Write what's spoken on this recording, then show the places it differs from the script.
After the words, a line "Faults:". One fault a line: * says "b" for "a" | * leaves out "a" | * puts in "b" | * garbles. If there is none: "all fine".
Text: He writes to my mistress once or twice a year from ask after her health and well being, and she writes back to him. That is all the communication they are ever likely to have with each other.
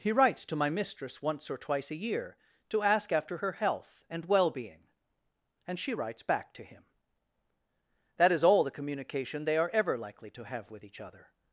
He writes to my mistress once or twice a year to ask after her health and well being, and she writes back to him. That is all the communication they are ever likely to have with each other.
Faults:
* says "to" for "from"